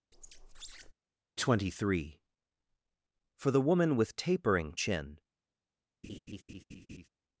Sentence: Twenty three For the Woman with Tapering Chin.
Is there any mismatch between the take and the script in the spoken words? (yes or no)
no